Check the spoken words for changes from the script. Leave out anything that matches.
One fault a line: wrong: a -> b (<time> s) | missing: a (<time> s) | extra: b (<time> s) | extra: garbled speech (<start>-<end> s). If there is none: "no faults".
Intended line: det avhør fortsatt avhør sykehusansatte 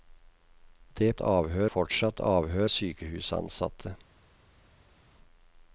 no faults